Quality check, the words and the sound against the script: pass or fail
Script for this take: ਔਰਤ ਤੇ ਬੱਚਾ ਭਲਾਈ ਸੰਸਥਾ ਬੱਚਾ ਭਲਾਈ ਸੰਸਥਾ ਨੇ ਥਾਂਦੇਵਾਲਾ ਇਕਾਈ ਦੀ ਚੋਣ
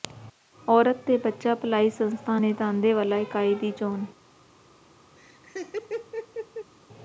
fail